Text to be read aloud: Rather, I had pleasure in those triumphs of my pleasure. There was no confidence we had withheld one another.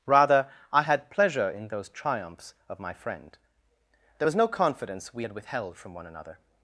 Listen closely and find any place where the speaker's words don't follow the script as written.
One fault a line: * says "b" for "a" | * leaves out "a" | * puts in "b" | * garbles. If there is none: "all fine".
* says "friend" for "pleasure"
* puts in "from"